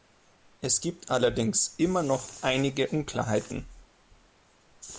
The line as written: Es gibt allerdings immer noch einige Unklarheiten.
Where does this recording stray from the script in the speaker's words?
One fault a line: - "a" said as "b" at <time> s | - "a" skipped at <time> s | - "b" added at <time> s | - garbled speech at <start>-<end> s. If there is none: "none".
none